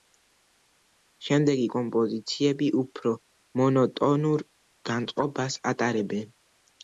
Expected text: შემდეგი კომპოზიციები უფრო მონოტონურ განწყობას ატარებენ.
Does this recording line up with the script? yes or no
yes